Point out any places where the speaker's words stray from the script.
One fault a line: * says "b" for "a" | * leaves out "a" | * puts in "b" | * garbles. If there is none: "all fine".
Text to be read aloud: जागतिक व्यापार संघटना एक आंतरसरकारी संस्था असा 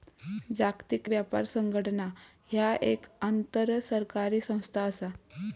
* puts in "ह्या"